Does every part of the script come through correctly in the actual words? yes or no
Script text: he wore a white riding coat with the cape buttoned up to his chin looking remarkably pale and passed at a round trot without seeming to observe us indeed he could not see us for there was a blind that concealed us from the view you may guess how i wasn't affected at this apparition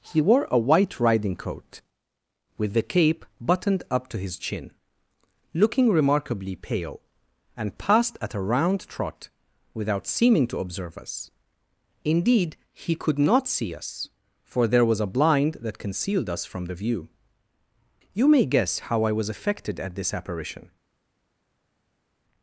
no